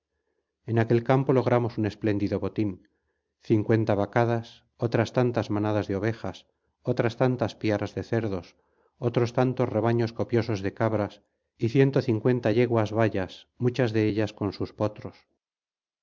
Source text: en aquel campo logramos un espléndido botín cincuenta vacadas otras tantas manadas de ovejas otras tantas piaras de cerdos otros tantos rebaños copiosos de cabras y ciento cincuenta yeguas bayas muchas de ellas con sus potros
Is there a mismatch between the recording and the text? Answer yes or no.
no